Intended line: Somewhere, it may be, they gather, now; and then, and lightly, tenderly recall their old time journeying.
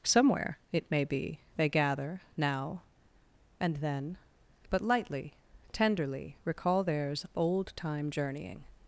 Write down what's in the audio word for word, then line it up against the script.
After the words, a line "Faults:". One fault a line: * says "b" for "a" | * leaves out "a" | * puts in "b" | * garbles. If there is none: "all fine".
Somewhere, it may be, they gather, now; and then, but lightly, tenderly recall theirs old time journeying.
Faults:
* says "but" for "and"
* says "theirs" for "their"